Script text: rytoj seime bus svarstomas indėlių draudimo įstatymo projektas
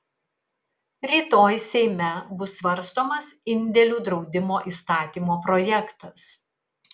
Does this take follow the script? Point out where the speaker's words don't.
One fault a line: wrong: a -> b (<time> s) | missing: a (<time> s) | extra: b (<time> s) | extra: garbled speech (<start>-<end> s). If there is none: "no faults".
no faults